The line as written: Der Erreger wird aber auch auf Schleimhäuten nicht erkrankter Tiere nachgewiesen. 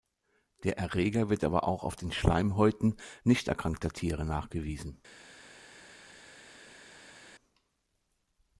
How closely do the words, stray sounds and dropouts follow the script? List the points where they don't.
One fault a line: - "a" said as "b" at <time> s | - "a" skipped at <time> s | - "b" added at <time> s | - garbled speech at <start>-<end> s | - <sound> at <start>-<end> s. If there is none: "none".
- "den" added at 1.9 s